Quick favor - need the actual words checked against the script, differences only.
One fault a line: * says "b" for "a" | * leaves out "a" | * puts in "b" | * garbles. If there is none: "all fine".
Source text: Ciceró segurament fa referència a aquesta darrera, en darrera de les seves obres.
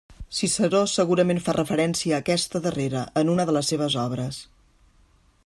* says "una" for "darrera"